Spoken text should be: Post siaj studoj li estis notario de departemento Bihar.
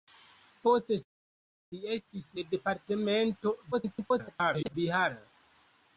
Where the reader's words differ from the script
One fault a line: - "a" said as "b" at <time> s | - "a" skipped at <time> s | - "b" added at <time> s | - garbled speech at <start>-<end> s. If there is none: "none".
- "studoj" skipped at 1.0 s
- "notario" skipped at 2.3 s
- garbled speech at 3.7-4.7 s